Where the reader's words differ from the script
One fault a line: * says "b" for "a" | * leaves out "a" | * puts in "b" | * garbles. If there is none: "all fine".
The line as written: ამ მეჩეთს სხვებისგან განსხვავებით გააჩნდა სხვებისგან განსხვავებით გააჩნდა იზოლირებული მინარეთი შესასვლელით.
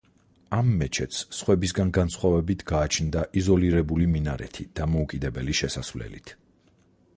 * leaves out "სხვებისგან განსხვავებით გააჩნდა"
* puts in "დამოუკიდებელი"